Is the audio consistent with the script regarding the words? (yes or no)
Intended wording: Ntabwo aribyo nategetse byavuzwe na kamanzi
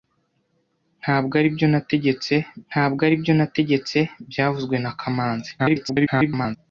no